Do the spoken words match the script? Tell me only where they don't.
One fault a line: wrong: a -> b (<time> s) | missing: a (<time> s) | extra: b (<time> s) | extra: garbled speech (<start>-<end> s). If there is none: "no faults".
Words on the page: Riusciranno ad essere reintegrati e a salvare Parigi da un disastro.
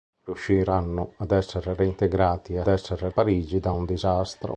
wrong: salvare -> essere (2.7 s)